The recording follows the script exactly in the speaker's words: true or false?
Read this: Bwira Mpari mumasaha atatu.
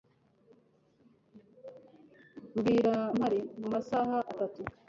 true